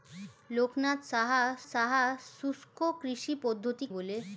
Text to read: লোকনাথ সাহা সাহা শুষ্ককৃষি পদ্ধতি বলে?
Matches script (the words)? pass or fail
pass